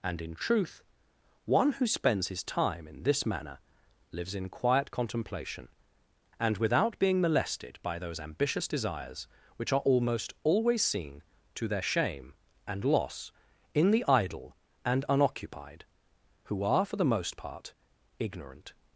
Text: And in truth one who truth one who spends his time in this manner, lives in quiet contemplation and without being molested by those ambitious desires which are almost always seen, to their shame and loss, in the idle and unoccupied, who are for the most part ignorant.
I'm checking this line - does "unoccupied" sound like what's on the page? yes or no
yes